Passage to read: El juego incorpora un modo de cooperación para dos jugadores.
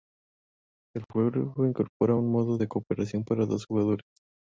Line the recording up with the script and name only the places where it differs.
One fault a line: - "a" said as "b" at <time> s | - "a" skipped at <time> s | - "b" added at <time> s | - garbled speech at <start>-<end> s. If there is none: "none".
none